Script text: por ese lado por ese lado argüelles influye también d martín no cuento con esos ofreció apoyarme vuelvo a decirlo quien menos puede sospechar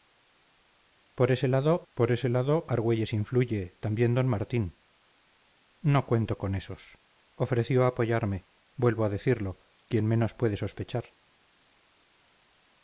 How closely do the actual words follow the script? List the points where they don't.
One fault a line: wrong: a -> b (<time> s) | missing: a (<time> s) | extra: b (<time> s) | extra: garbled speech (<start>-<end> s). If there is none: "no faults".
no faults